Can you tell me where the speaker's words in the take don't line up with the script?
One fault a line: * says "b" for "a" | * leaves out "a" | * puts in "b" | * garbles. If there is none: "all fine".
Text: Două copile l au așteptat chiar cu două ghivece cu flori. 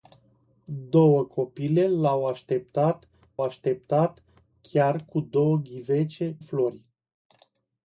* puts in "așteptat"
* leaves out "cu"